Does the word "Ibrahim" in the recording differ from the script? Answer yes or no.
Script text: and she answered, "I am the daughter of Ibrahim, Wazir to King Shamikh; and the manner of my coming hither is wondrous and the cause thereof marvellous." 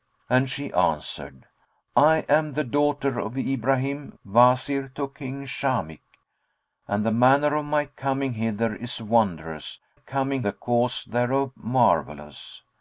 no